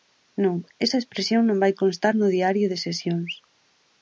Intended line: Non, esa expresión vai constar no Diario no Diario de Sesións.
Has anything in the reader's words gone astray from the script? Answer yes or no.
yes